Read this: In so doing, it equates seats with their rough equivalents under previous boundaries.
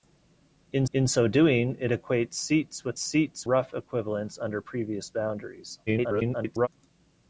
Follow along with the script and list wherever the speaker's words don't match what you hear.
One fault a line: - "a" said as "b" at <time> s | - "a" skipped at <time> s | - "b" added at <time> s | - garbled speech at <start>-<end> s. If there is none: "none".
- "in" added at 0.9 s
- "their" said as "seats" at 3.0 s
- garbled speech at 5.9-6.7 s